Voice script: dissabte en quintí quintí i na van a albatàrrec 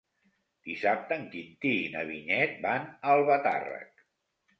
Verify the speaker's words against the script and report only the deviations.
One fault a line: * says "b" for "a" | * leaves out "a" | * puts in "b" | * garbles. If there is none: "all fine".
* leaves out "quintí"
* puts in "vinyet"